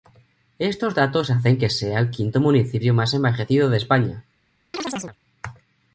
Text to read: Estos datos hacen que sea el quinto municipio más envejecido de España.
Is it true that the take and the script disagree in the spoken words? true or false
false